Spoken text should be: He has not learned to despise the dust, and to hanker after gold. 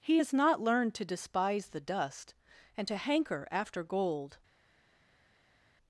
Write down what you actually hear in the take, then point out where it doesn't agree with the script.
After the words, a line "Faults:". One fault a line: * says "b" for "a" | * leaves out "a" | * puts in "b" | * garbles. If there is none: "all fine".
He has not learned to despise the dust, and to hanker after gold.
Faults:
all fine